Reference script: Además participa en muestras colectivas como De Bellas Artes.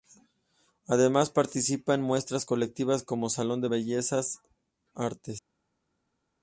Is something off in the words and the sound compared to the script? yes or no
yes